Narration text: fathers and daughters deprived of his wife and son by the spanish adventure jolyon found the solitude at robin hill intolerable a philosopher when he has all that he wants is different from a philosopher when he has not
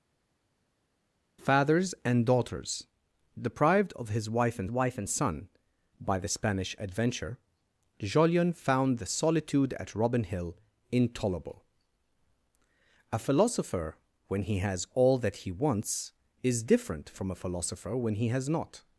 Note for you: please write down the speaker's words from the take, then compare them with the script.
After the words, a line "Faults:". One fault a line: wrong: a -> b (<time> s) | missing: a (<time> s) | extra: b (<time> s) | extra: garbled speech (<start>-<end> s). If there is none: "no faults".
fathers and daughters deprived of his wife and wife and son by the spanish adventure jolyon found the solitude at robin hill intolerable a philosopher when he has all that he wants is different from a philosopher when he has not
Faults:
extra: wife and (4.7 s)